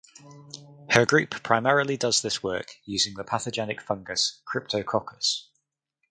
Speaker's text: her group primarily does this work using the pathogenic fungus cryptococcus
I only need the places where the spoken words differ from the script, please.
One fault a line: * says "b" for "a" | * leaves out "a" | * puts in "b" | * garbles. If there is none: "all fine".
all fine